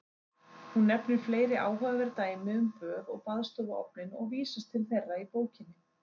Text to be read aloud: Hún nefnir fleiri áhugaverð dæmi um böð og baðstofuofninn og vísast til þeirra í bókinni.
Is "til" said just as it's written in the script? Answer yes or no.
yes